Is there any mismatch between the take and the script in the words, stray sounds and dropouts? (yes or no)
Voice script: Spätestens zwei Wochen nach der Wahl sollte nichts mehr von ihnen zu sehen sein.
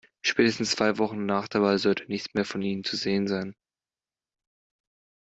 no